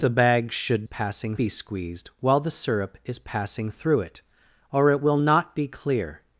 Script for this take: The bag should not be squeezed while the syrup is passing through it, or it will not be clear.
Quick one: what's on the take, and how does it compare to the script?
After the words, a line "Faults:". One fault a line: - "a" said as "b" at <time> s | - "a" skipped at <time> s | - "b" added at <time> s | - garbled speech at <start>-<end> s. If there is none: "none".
The bag should passing be squeezed while the syrup is passing through it, or it will not be clear.
Faults:
- "not" said as "passing" at 0.8 s